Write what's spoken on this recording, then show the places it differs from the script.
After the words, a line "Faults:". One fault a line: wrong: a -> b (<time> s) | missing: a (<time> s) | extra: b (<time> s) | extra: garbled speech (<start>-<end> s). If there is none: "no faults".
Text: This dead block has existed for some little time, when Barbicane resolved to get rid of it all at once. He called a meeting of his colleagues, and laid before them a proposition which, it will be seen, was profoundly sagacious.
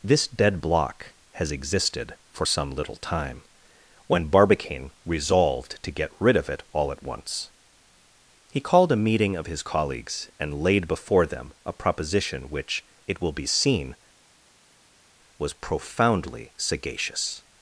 This dead block has existed for some little time, when Barbicane resolved to get rid of it all at once. He called a meeting of his colleagues, and laid before them a proposition which, it will be seen, was profoundly sagacious.
Faults:
no faults